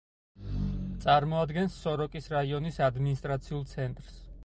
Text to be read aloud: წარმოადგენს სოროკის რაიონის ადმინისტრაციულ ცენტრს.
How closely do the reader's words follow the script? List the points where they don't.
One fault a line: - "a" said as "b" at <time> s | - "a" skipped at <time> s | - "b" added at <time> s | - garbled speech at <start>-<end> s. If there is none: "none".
none